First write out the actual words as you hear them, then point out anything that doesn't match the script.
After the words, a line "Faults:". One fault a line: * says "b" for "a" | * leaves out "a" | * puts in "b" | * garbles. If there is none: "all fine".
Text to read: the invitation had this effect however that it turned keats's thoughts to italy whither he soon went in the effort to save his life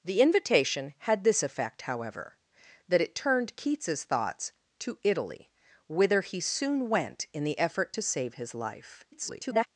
the invitation had this effect however that it turned keats's thoughts to italy whither he soon went in the effort to save his life [garbled]
Faults:
* garbles